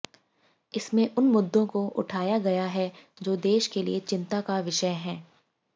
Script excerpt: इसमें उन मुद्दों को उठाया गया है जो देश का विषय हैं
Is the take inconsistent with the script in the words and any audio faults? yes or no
yes